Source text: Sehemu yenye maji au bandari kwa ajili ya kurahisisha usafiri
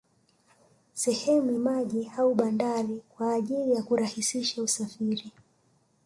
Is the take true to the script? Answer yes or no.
no